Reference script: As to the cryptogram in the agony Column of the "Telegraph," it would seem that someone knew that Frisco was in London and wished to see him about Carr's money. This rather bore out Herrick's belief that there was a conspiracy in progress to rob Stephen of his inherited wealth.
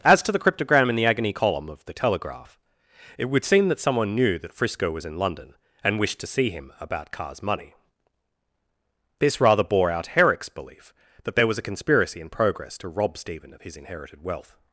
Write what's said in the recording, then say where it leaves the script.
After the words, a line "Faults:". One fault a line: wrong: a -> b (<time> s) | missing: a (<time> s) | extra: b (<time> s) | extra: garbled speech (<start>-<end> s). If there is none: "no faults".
As to the cryptogram in the agony Column of the "Telegraph," it would seem that someone knew that Frisco was in London and wished to see him about Carr's money. This rather bore out Herrick's belief that there was a conspiracy in progress to rob Stephen of his inherited wealth.
Faults:
no faults